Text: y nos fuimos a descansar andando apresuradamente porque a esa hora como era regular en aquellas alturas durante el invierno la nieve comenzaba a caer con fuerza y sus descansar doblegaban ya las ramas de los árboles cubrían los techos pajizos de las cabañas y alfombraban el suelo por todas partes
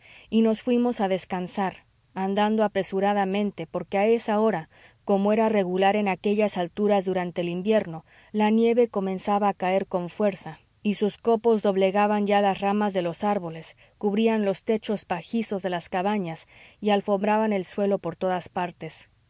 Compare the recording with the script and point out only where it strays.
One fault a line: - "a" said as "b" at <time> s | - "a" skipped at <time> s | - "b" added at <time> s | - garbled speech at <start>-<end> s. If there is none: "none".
- "descansar" said as "copos" at 11.2 s